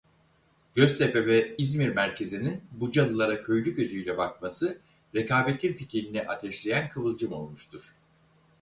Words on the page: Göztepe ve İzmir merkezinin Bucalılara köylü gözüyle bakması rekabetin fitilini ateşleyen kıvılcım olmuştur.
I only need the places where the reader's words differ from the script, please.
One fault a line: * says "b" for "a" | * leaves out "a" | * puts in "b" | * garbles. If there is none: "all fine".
all fine